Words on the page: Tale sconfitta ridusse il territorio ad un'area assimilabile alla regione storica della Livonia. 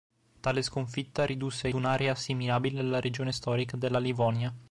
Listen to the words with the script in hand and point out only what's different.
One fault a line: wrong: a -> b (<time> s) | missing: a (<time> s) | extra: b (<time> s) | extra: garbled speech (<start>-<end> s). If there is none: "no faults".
missing: il territorio ad (1.7 s)